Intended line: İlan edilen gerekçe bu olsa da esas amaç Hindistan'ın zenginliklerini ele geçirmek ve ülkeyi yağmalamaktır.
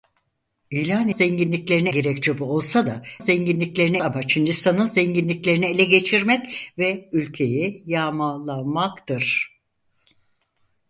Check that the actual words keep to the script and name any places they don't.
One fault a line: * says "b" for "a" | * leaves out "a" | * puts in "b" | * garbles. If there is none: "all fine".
* says "zenginliklerini" for "edilen"
* says "zenginliklerini" for "esas"